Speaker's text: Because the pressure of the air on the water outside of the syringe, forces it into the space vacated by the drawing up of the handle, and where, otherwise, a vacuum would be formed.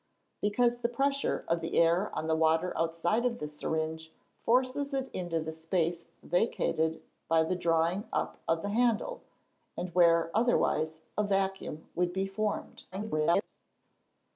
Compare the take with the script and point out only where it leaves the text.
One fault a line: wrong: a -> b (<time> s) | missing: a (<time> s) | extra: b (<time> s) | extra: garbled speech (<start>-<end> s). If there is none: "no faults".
extra: garbled speech (12.9-13.5 s)